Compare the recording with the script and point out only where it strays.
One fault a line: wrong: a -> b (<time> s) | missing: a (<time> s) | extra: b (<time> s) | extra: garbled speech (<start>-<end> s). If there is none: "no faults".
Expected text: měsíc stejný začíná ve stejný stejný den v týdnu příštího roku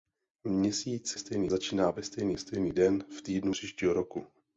no faults